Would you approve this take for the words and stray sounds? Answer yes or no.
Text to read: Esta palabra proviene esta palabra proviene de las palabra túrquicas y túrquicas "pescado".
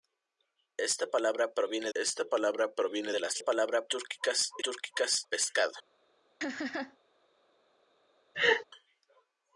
no